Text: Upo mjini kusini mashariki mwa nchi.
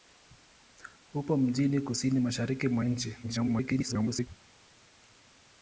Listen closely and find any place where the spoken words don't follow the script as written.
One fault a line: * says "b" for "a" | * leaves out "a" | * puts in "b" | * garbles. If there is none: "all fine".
* garbles